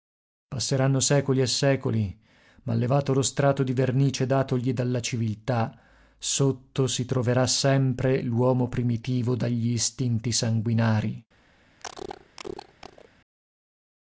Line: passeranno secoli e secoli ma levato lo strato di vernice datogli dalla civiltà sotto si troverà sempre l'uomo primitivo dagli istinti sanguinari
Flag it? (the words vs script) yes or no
no